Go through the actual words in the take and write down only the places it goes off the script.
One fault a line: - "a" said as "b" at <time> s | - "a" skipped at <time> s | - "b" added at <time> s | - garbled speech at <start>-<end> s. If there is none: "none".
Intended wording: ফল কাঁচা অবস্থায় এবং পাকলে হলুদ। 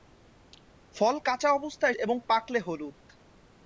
none